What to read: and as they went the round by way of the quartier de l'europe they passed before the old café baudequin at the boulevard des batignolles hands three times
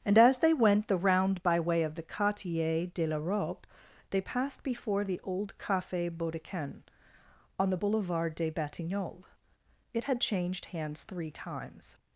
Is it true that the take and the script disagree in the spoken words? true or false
true